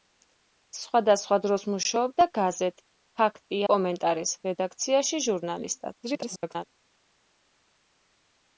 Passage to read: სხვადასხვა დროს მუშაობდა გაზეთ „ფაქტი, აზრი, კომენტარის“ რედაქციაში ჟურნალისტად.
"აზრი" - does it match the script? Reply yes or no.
no